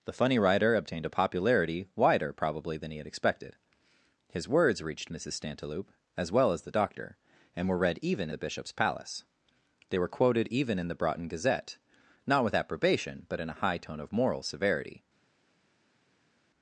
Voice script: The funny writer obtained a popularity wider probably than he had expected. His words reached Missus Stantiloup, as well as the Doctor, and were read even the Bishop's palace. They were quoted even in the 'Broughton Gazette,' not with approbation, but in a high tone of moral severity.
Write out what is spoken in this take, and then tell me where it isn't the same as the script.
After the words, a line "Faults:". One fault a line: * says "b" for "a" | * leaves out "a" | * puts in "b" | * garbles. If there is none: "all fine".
The funny writer obtained a popularity wider probably than he had expected. His words reached Missus Stantiloup, as well as the Doctor, and were read even the Bishop's palace. They were quoted even in the 'Broughton Gazette,' not with approbation, but in a high tone of moral severity.
Faults:
all fine